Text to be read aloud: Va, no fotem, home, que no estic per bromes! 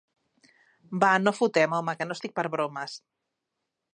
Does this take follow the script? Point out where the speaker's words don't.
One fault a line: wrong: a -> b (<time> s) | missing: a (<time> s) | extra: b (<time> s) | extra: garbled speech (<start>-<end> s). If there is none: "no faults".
no faults